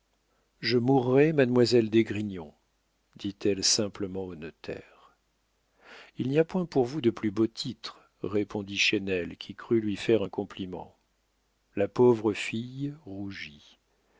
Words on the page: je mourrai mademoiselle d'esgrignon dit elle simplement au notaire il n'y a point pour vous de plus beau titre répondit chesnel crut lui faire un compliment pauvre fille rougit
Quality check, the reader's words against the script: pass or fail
fail